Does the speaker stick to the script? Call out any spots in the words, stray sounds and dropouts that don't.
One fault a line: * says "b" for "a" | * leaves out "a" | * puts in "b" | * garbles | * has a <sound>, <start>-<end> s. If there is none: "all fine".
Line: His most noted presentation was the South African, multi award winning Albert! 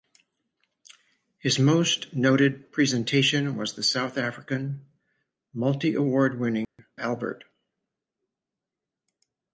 * has a dropout, 6.6-6.8 s